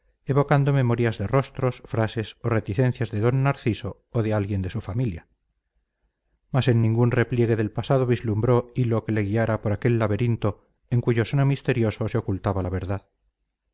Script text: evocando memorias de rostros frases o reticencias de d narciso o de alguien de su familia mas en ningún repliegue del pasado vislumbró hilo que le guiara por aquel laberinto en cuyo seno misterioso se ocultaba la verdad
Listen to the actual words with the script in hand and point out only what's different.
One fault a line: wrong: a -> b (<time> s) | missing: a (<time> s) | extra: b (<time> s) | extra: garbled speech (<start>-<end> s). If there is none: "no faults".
no faults